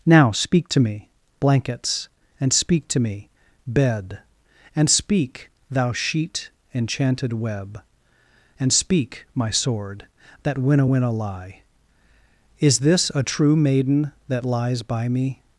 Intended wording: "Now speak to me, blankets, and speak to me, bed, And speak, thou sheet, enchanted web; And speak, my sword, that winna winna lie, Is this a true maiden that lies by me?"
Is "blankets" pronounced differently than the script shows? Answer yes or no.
no